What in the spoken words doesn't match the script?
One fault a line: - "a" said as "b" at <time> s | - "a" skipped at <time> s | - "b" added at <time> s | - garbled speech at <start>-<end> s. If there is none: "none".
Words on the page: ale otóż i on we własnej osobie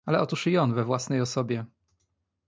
none